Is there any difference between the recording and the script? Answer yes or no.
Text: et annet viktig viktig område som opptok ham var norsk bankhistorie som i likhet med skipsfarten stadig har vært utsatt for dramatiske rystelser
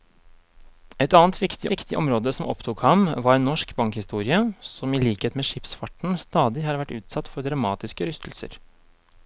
no